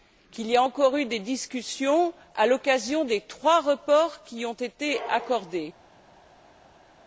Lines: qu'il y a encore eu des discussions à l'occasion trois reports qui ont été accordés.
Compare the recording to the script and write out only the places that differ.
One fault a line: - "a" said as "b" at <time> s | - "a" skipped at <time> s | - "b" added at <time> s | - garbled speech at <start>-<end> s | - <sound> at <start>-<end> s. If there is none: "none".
- "des" added at 3.0 s